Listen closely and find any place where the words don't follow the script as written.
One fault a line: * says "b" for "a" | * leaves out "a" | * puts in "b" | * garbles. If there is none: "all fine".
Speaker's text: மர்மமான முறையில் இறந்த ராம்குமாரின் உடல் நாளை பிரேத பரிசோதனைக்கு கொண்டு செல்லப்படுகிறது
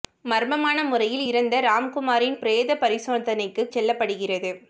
* leaves out "உடல் நாளை"
* leaves out "கொண்டு"